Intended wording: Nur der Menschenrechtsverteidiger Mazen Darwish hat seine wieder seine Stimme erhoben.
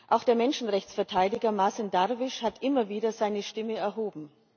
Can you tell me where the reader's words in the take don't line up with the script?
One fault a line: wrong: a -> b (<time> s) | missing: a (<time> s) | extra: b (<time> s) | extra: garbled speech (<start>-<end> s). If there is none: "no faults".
wrong: Nur -> Auch (0.1 s)
wrong: seine -> immer (2.6 s)